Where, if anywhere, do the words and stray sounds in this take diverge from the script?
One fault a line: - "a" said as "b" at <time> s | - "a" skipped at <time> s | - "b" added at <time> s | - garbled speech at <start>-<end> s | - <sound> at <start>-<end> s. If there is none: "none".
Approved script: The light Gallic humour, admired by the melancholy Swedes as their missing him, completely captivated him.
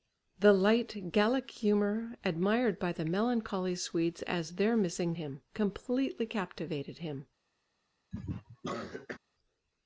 - cough at 8.1-9.2 s